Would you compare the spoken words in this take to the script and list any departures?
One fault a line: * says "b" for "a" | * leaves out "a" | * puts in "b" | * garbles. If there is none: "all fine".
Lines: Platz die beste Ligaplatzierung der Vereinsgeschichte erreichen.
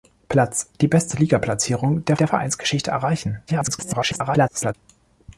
* puts in "der"
* garbles